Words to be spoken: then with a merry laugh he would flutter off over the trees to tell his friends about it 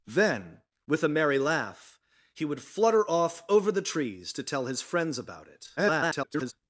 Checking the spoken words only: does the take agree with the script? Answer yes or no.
no